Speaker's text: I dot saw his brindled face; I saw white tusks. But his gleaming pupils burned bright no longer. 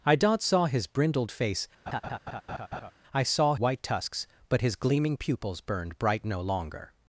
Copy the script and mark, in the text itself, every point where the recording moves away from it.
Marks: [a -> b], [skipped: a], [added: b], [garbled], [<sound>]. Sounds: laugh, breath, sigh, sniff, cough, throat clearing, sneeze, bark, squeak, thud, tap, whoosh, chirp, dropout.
I dot saw his brindled face; [laugh] I saw white tusks. But his gleaming pupils burned bright no longer.